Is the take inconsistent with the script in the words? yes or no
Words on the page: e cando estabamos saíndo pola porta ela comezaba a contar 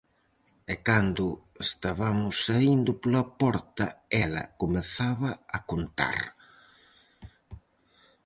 no